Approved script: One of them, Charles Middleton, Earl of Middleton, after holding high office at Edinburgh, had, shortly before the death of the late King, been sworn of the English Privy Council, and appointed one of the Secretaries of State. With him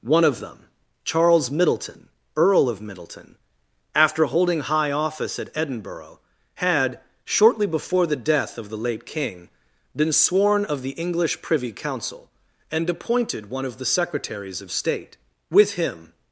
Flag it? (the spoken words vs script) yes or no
no